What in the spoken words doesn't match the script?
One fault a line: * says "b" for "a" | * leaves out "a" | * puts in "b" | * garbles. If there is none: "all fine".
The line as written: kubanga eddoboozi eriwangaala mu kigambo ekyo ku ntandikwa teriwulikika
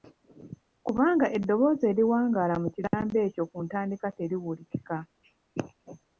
all fine